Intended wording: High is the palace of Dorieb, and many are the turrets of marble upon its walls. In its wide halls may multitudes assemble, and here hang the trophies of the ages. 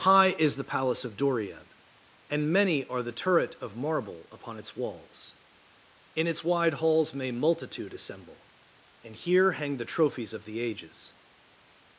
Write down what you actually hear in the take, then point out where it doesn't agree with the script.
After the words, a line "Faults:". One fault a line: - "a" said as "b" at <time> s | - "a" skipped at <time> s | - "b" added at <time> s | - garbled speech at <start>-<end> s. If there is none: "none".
High is the palace of Dorieb, and many are the turret of marble upon its walls. In its wide halls may multitude assemble, and here hang the trophies of the ages.
Faults:
- "turrets" said as "turret" at 3.1 s
- "multitudes" said as "multitude" at 7.3 s